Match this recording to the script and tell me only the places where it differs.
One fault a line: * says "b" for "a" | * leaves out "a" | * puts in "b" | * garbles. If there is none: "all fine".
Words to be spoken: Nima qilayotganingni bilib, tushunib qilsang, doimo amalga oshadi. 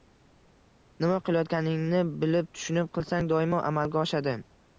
all fine